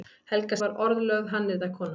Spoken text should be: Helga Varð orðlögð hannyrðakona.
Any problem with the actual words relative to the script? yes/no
no